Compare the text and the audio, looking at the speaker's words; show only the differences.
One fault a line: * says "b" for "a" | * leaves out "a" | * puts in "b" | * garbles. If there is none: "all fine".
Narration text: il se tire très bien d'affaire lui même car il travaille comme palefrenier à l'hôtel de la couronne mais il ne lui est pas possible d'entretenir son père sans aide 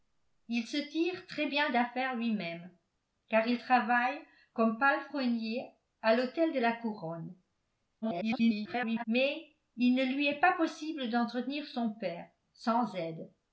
* garbles